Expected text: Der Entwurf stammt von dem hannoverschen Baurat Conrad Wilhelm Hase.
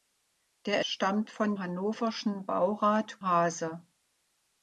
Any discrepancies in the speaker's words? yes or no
yes